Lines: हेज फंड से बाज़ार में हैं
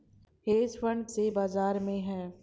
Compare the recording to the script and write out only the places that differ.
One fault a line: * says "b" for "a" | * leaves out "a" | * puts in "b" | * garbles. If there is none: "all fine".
all fine